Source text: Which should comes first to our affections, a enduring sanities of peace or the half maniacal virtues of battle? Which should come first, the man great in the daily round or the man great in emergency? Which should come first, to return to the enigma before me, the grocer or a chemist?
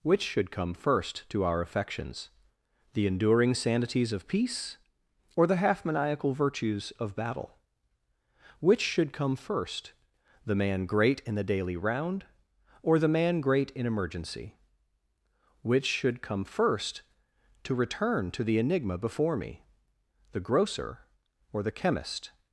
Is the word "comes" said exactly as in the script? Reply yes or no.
no